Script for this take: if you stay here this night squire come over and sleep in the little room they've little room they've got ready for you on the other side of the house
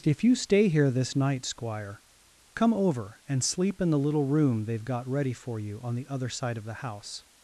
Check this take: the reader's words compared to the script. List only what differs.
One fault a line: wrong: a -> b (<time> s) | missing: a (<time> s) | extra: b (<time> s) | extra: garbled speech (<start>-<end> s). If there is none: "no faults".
missing: little room they've (4.8 s)